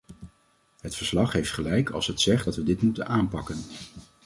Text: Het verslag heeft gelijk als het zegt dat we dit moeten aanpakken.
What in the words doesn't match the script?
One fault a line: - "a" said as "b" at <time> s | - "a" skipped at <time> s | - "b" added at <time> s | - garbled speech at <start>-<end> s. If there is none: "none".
none